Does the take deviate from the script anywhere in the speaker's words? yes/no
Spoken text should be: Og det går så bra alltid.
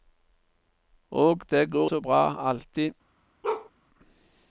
no